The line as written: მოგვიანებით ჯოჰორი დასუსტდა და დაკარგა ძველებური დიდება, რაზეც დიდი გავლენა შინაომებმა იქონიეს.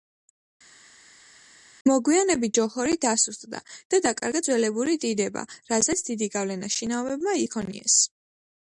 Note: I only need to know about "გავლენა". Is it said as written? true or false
true